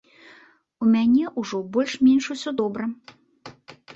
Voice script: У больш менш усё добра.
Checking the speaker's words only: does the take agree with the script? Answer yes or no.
no